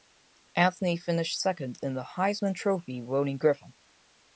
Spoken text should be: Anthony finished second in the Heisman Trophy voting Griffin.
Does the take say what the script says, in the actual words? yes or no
yes